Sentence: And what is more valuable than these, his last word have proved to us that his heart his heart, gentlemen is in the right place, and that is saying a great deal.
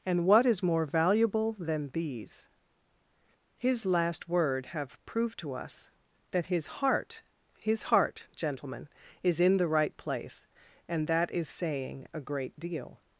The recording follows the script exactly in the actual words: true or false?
true